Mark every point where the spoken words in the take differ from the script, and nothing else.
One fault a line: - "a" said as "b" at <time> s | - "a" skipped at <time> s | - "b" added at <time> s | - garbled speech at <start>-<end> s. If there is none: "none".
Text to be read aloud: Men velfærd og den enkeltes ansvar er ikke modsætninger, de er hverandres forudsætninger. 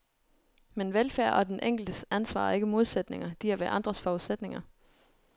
none